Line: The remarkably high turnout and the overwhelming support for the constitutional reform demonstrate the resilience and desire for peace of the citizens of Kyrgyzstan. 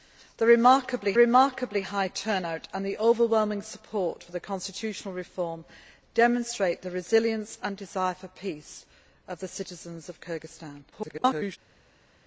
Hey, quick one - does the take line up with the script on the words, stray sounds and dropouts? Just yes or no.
no